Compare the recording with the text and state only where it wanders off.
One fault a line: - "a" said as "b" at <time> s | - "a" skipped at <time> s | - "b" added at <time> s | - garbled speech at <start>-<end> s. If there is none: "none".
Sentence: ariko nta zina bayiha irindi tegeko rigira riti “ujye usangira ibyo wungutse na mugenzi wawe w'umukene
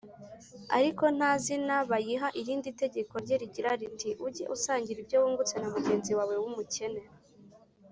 - "rye" added at 3.2 s